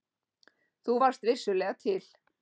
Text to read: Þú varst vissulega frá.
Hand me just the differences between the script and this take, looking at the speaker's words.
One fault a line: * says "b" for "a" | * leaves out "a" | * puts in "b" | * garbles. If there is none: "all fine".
* says "til" for "frá"